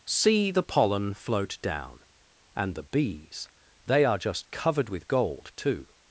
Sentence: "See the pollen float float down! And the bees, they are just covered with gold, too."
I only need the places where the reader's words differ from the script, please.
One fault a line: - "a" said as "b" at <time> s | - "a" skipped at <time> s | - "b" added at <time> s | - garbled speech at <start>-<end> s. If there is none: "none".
- "float" skipped at 1.6 s